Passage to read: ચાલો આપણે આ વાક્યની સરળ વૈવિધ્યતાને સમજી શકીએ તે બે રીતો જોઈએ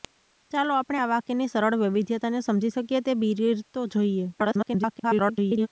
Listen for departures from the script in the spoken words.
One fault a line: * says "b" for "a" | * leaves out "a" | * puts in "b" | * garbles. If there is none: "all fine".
* garbles